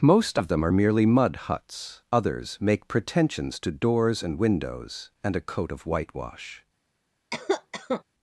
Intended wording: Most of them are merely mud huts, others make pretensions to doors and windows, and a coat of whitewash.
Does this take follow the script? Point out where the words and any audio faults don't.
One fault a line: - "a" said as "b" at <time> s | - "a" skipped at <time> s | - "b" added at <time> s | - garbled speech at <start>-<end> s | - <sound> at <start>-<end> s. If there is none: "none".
- cough at 7.3-8.0 s